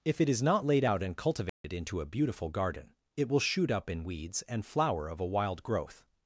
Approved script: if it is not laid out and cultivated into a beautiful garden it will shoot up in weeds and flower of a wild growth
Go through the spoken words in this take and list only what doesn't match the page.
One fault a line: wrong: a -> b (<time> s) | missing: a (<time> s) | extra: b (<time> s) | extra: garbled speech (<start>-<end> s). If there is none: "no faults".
no faults